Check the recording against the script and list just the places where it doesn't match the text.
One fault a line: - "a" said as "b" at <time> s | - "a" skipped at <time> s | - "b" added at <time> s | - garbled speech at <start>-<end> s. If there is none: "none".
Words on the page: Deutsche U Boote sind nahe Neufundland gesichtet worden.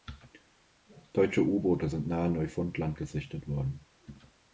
none